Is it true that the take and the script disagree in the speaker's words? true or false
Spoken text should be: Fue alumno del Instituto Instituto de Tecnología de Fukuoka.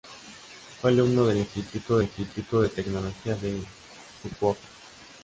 false